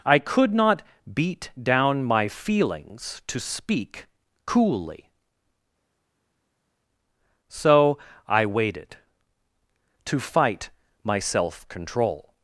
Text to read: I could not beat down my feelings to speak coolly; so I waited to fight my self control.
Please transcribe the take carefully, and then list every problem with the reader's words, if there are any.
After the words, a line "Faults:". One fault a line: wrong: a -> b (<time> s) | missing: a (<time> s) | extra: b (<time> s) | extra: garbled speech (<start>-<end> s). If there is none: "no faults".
I could not beat down my feelings to speak coolly; so I waited to fight my self control.
Faults:
no faults